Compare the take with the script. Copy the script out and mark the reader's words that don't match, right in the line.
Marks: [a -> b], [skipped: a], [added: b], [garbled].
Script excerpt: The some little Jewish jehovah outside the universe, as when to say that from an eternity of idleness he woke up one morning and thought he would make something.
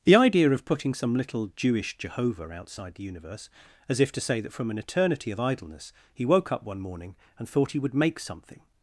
The [added: idea of putting] some little Jewish jehovah outside the universe, as [when -> if] to say that from an eternity of idleness he woke up one morning and thought he would make something.